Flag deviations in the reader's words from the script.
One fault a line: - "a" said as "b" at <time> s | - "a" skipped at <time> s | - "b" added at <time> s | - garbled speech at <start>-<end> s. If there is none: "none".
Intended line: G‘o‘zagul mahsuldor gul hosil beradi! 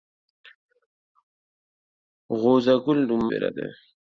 - "mahsuldor gul hosil" skipped at 3.0 s